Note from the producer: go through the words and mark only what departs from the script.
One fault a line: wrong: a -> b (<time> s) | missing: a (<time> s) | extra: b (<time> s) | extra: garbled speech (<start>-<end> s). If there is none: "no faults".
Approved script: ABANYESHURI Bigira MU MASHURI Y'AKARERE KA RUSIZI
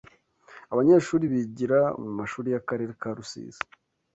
no faults